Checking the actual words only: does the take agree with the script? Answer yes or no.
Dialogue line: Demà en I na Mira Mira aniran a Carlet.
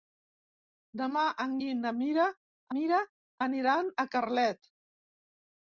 yes